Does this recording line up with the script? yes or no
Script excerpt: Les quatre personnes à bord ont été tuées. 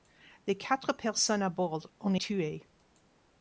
no